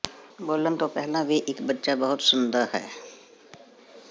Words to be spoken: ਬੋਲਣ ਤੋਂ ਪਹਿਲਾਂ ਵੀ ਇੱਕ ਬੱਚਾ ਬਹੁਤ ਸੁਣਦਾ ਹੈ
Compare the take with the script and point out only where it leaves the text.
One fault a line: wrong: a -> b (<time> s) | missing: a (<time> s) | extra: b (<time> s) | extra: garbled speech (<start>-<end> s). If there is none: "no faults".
no faults